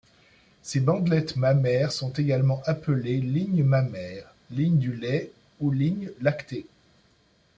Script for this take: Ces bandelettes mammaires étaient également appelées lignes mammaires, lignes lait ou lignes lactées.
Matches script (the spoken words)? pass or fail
fail